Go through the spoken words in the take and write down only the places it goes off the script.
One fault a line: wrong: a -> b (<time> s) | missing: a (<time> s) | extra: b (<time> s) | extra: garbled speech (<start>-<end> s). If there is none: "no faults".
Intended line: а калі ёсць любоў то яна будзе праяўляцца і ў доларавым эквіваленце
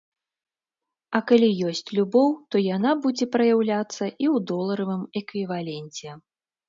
no faults